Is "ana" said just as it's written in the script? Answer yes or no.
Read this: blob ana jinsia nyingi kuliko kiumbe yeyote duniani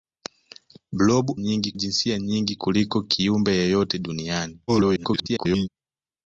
no